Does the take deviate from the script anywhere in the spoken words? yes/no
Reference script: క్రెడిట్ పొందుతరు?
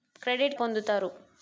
no